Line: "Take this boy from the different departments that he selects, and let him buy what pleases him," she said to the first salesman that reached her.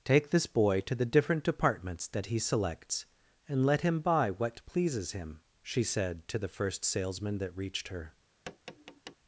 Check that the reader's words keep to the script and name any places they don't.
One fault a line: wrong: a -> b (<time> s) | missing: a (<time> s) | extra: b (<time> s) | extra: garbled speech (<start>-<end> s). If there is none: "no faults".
wrong: from -> to (0.8 s)